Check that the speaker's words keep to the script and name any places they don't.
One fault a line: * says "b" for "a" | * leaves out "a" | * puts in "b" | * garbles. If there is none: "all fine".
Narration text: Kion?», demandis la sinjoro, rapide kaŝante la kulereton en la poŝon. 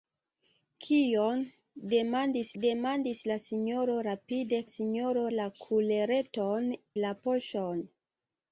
* puts in "demandis"
* says "sinjoro" for "kaŝante"
* leaves out "en"